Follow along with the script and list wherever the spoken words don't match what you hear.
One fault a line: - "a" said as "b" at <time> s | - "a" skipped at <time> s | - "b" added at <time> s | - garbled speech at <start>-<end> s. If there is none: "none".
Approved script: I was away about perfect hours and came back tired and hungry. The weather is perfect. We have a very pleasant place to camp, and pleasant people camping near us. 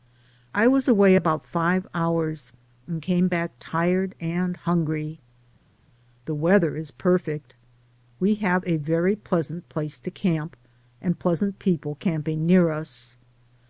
- "perfect" said as "five" at 1.4 s